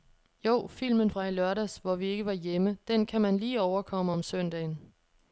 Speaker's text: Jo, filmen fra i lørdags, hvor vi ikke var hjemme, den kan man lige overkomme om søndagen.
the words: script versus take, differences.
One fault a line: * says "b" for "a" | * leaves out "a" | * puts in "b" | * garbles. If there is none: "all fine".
all fine